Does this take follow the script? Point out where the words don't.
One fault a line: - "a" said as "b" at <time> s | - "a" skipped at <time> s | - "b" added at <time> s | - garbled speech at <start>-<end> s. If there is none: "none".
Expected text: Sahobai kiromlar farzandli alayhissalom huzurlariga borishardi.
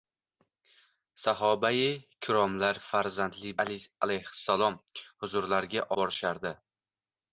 none